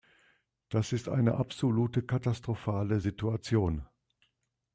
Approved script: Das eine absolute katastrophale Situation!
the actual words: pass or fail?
fail